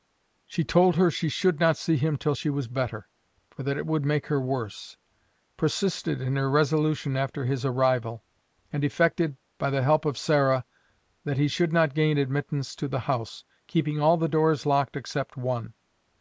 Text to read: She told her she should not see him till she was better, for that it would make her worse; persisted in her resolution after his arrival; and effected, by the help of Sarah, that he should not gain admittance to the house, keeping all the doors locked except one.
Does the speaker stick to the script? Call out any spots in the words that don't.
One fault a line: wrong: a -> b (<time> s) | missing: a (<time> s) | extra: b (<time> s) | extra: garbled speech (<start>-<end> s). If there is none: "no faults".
no faults